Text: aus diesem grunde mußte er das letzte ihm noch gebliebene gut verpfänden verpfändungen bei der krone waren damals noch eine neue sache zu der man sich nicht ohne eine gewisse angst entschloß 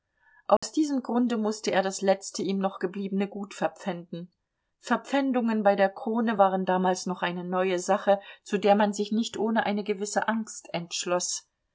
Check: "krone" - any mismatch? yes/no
no